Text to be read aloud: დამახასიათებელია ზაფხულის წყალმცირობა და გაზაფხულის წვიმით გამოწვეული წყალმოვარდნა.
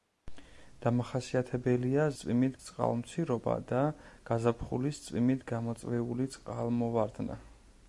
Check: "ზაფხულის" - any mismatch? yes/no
yes